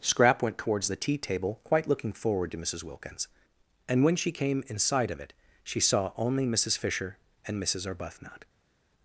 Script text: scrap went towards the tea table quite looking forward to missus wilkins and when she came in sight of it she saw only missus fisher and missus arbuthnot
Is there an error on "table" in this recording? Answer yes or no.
no